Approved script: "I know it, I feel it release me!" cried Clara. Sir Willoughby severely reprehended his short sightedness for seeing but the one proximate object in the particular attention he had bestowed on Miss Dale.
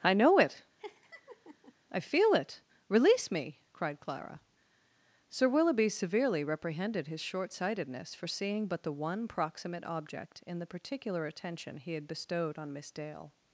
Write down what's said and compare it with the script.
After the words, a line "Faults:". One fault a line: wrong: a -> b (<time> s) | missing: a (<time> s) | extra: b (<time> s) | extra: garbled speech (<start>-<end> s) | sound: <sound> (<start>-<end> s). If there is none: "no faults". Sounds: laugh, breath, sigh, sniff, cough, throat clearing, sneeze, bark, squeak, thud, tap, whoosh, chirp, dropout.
"I know it, I feel it release me!" cried Clara. Sir Willoughby severely reprehended his short sightedness for seeing but the one proximate object in the particular attention he had bestowed on Miss Dale.
Faults:
sound: laugh (0.8-1.7 s)